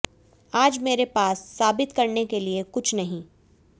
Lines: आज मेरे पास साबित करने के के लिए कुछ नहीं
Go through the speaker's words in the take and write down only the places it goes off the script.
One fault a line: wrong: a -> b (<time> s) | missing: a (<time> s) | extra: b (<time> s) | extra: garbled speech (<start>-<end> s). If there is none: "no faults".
missing: के (2.4 s)